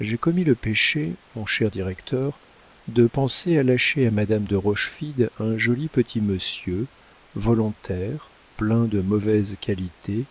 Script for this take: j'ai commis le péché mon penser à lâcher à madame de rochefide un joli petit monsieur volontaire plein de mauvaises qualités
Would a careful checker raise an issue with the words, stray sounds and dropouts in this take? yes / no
yes